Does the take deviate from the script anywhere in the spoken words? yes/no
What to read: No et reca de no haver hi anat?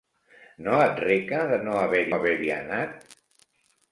yes